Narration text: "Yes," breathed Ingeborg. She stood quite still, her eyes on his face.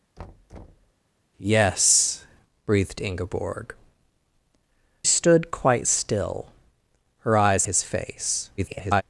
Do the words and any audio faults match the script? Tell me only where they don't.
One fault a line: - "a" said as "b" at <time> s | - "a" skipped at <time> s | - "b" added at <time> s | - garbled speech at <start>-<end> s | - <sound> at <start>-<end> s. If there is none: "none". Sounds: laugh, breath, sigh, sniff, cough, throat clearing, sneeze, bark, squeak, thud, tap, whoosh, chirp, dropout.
- thud at 0.2-0.9 s
- "She" skipped at 3.7 s
- "on" skipped at 7.7 s
- garbled speech at 8.6-9.0 s